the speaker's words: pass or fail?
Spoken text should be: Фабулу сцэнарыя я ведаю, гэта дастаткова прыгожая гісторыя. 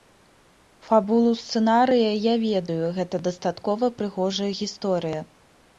pass